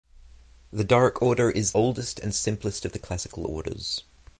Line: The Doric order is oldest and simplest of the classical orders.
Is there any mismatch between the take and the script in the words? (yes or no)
no